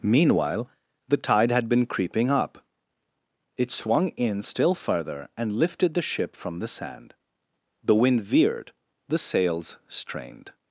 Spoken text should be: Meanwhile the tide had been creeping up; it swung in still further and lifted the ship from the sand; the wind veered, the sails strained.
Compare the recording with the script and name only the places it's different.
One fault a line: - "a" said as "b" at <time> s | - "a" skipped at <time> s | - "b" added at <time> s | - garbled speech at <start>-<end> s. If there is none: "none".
none